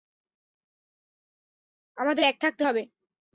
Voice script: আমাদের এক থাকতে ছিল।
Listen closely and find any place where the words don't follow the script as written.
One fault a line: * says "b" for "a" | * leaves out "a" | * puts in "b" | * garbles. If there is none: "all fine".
* says "হবে" for "ছিল"